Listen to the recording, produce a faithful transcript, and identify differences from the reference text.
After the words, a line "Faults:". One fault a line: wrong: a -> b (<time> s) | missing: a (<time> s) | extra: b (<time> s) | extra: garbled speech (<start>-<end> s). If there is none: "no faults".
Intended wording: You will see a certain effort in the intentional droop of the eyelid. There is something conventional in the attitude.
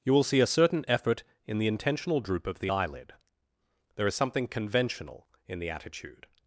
You will see a certain effort in the intentional droop of the eyelid. There is something conventional in the attitude.
Faults:
no faults